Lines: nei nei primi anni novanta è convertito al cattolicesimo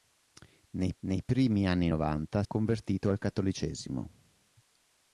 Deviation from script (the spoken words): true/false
false